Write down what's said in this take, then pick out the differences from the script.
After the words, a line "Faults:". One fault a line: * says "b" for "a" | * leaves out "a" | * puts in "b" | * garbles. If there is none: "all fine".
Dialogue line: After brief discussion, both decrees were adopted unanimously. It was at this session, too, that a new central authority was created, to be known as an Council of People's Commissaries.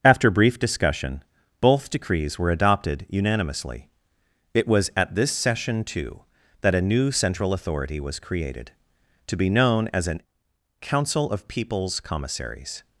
After brief discussion, both decrees were adopted unanimously. It was at this session, too, that a new central authority was created, to be known as an Council of People's Commissaries.
Faults:
all fine